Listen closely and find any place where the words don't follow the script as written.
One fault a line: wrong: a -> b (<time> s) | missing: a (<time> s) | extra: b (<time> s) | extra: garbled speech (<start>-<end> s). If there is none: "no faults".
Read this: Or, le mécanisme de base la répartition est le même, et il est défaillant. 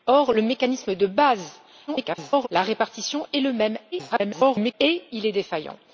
extra: garbled speech (1.9-2.5 s)
extra: garbled speech (3.9-4.7 s)